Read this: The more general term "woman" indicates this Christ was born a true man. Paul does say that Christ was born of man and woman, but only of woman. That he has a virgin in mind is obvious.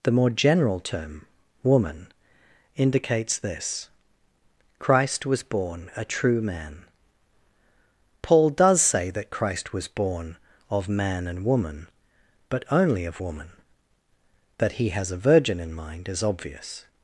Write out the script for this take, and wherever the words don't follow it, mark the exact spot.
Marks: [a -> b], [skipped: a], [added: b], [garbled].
The more general term "woman" indicates this Christ was born a true man. Paul does say that Christ was born of man and woman, but only of woman. That he has a virgin in mind is obvious.